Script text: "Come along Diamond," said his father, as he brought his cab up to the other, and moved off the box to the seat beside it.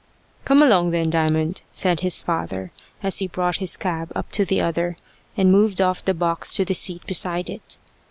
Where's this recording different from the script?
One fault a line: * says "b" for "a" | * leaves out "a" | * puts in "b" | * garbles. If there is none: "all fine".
* puts in "then"